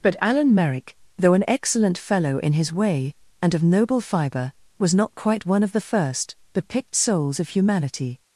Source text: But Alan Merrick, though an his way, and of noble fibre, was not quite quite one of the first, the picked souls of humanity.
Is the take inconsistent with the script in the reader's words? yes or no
yes